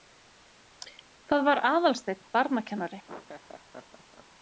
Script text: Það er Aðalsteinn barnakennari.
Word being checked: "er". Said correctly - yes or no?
no